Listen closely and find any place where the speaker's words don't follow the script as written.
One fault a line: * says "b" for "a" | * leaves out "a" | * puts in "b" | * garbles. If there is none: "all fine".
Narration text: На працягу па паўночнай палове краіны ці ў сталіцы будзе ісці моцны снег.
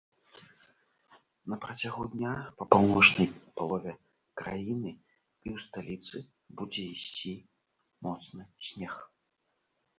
* puts in "дня"
* says "і" for "ці"